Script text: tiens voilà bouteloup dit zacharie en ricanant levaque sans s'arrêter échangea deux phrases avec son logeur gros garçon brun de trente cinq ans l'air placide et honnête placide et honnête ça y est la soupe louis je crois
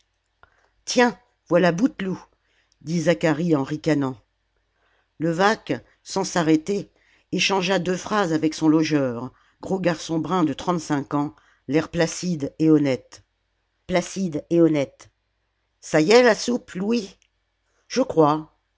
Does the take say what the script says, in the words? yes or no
yes